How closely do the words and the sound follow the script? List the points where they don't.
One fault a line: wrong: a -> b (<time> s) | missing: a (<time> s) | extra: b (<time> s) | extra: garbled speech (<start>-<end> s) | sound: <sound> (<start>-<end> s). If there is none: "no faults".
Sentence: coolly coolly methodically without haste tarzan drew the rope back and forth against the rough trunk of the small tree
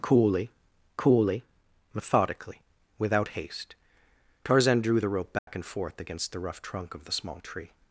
sound: dropout (5.4-5.5 s)